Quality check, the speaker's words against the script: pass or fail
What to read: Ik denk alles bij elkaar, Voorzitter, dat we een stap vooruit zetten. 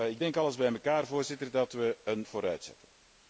fail